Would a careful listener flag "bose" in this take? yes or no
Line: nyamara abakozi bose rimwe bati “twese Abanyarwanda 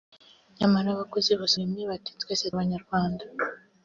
no